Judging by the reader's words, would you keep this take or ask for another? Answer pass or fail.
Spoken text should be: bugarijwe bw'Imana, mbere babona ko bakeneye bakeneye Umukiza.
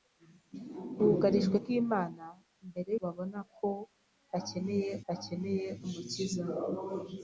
pass